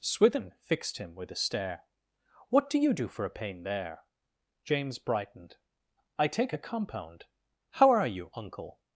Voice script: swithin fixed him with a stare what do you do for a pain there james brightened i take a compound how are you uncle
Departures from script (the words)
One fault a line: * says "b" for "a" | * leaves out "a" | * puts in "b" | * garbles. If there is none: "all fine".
all fine